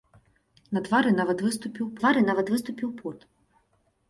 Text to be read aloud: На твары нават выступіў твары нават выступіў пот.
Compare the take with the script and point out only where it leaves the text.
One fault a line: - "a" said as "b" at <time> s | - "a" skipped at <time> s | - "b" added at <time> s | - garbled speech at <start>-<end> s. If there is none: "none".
none